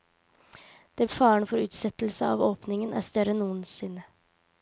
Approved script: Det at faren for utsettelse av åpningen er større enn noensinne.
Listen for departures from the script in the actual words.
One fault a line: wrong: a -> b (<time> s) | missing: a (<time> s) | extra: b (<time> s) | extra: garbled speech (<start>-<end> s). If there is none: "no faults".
no faults